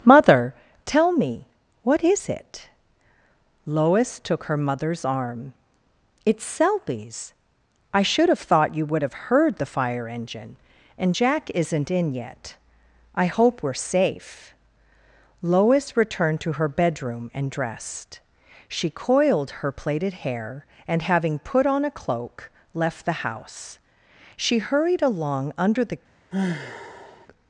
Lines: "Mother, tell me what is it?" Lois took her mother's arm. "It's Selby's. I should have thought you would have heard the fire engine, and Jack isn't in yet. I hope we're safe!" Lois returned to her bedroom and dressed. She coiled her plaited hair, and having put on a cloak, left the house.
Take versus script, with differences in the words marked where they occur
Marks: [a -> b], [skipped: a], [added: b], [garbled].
"Mother, tell me what is it?" Lois took her mother's arm. "It's Selby's. I should have thought you would have heard the fire engine, and Jack isn't in yet. I hope we're safe!" Lois returned to her bedroom and dressed. She coiled her plaited hair, and having put on a cloak, left the house. [added: She hurried along under the]